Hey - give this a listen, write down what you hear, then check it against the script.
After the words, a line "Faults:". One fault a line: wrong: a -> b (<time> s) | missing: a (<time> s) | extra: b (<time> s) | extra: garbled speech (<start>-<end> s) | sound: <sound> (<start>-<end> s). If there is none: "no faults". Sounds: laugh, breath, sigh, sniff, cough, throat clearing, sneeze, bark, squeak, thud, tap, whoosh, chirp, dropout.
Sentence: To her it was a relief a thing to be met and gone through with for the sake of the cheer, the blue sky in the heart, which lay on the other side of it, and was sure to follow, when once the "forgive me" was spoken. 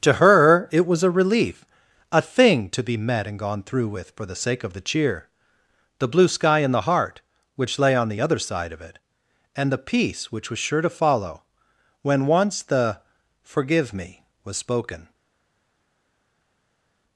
To her it was a relief a thing to be met and gone through with for the sake of the cheer, the blue sky in the heart, which lay on the other side of it, and the peace which was sure to follow, when once the "forgive me" was spoken.
Faults:
extra: the peace which (9.7 s)